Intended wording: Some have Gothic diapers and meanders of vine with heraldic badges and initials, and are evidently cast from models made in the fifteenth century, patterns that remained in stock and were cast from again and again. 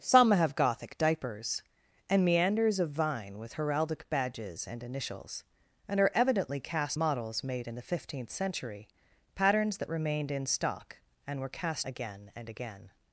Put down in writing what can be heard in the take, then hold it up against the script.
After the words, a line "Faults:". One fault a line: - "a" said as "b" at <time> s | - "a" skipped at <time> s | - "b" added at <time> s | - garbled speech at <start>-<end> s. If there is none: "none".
Some have Gothic diapers and meanders of vine with heraldic badges and initials, and are evidently cast models made in the fifteenth century, patterns that remained in stock and were cast again and again.
Faults:
- "from" skipped at 7.0 s
- "from" skipped at 11.9 s